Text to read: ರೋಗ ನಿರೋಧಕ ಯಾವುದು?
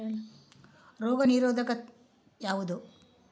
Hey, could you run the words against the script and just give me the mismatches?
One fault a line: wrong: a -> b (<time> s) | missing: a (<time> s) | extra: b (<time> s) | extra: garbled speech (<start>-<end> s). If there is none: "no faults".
no faults